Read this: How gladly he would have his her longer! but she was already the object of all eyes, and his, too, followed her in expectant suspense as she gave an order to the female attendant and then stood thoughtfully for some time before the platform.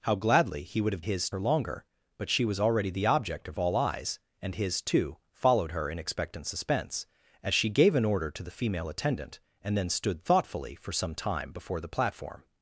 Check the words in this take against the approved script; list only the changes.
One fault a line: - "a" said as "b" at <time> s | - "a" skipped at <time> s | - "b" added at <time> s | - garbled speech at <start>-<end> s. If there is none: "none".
none